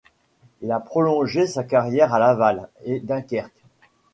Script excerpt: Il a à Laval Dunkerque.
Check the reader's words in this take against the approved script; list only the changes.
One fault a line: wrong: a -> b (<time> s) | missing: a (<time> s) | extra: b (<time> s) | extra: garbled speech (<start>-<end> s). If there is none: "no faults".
extra: prolongé sa carrière (0.8 s)
extra: et (2.9 s)